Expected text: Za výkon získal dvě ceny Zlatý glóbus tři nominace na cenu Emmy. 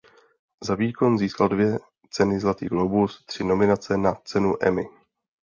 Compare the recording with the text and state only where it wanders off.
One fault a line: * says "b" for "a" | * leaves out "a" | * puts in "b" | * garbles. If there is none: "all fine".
all fine